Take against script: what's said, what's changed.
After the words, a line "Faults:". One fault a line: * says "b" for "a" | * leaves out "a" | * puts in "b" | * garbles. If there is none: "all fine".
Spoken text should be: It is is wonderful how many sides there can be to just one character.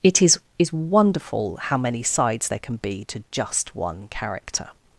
It is is wonderful how many sides there can be to just one character.
Faults:
all fine